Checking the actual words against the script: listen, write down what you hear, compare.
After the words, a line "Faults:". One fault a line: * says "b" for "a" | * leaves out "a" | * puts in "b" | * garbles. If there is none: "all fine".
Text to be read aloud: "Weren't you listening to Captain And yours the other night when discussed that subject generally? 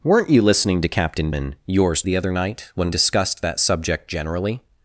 "Weren't you listening to Captain And yours the other night when discussed that subject generally?
Faults:
all fine